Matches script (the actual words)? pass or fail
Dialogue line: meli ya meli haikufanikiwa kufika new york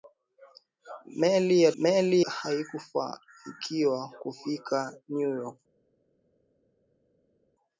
pass